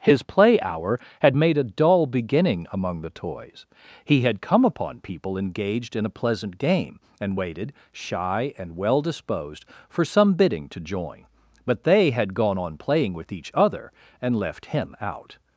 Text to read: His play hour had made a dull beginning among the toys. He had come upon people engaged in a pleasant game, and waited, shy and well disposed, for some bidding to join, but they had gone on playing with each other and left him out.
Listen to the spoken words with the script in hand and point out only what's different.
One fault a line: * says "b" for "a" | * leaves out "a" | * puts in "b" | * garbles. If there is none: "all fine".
all fine